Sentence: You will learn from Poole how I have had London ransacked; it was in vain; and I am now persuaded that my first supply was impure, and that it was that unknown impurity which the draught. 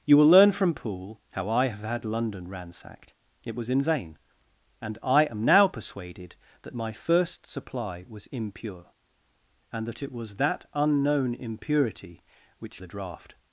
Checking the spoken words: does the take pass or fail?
pass